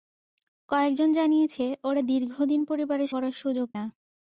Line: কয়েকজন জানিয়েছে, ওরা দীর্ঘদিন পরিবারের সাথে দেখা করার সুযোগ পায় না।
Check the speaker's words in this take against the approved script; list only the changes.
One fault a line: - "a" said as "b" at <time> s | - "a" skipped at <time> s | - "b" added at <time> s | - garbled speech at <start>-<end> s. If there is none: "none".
- "সাথে দেখা" skipped at 3.1 s
- "পায়" skipped at 3.7 s